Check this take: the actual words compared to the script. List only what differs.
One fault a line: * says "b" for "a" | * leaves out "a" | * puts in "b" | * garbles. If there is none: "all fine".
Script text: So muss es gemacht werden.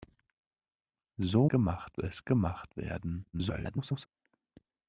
* says "gemacht" for "muss"
* garbles